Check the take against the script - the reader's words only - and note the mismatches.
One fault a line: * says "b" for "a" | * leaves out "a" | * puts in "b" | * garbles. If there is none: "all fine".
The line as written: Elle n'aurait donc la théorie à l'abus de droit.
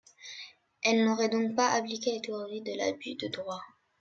* puts in "pas appliqué"
* says "de" for "à"